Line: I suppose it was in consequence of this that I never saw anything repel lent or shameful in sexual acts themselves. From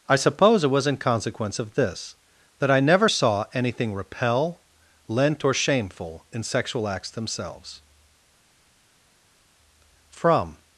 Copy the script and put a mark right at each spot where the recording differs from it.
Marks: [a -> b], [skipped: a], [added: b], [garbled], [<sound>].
I suppose it was in consequence of this that I never saw anything repel lent or shameful in sexual acts themselves. From